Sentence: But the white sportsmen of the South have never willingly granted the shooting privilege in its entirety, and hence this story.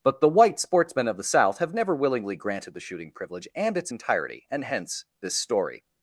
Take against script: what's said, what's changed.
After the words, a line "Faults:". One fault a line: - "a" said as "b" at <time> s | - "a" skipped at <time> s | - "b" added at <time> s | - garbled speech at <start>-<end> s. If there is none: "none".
But the white sportsmen of the South have never willingly granted the shooting privilege and its entirety, and hence this story.
Faults:
- "in" said as "and" at 3.5 s